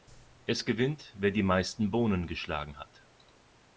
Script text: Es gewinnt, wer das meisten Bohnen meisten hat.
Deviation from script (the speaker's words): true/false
true